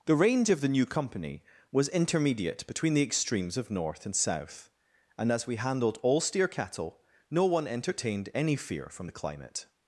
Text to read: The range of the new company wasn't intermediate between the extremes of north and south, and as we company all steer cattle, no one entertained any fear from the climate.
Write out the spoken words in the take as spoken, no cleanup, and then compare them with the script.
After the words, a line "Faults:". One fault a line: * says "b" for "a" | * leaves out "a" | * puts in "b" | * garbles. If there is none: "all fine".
The range of the new company was intermediate between the extremes of north and south, and as we handled all steer cattle, no one entertained any fear from the climate.
Faults:
* says "was" for "wasn't"
* says "handled" for "company"